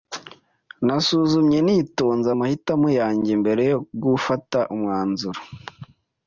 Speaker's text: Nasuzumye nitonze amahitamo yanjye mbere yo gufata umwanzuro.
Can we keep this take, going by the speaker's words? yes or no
yes